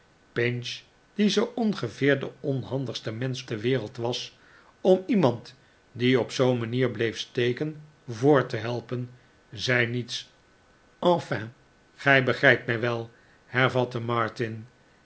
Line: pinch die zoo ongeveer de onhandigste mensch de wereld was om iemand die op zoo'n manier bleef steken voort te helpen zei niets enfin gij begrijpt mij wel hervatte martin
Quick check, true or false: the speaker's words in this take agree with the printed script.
true